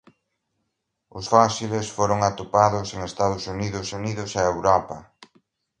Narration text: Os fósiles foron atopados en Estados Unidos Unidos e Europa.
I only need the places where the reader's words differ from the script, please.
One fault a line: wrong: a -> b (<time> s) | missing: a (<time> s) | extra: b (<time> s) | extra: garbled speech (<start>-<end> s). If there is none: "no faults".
no faults